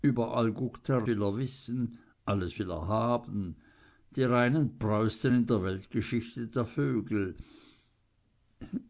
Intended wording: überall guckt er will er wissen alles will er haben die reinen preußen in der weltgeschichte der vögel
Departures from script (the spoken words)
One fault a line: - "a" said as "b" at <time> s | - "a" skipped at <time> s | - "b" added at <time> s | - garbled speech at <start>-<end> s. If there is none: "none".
none